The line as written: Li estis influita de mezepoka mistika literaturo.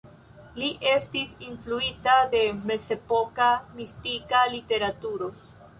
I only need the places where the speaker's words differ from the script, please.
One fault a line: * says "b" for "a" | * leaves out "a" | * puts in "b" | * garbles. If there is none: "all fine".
all fine